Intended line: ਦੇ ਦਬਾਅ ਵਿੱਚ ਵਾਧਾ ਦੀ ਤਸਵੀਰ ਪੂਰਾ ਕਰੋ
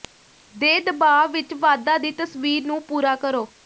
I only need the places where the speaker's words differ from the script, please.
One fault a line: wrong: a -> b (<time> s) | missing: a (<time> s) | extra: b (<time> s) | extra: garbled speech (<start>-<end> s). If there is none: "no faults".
extra: ਨੂੰ (2.7 s)